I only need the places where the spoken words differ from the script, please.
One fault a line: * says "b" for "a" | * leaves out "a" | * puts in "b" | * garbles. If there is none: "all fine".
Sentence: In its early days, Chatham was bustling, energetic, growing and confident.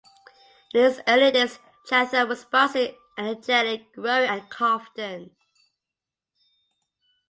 all fine